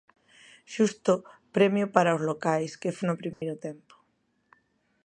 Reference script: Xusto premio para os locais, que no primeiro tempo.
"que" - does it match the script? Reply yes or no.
yes